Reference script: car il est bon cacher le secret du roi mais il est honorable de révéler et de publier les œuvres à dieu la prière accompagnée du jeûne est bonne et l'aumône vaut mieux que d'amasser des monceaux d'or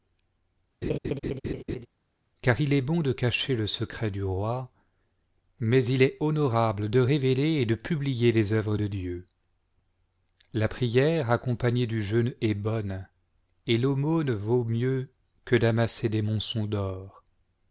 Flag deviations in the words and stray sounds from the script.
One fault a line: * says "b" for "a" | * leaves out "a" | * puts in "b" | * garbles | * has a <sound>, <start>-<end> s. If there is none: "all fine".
* has a laugh, 0.8-1.9 s
* puts in "de"
* says "de" for "à"